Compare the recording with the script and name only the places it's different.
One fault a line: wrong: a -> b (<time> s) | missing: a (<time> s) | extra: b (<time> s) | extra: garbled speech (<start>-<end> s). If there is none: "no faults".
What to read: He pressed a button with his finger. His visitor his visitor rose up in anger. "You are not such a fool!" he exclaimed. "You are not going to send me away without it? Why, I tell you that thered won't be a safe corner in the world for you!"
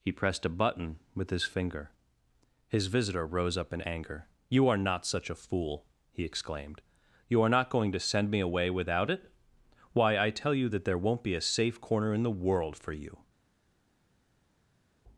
missing: his visitor (3.2 s)
wrong: thered -> there (10.8 s)